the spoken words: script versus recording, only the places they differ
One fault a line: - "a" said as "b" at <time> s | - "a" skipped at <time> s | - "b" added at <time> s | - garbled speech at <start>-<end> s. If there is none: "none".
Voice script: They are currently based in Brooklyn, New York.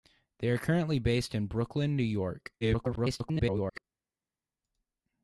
- garbled speech at 2.6-3.8 s